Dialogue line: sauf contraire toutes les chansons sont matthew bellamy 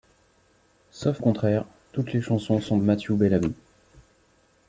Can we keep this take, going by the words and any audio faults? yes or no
yes